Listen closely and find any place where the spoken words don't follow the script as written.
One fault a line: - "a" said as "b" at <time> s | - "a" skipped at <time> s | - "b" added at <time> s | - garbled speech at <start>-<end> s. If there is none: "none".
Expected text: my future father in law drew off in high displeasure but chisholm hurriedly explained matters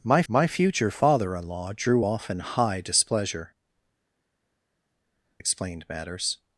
- "my" added at 0.3 s
- "but chisholm hurriedly" skipped at 3.5 s